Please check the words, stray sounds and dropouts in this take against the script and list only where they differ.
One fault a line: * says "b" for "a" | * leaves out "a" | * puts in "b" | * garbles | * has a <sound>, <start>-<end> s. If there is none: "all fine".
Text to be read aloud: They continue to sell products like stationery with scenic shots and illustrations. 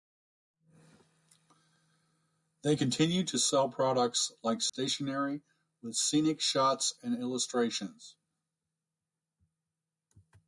* has a dropout, 4.7-4.7 s